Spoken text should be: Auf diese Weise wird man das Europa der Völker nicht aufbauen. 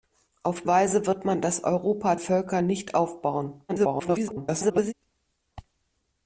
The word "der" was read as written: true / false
false